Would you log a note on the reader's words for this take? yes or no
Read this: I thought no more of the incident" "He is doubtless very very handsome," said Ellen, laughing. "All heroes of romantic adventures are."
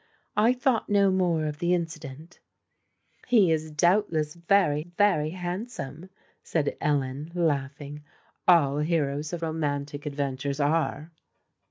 no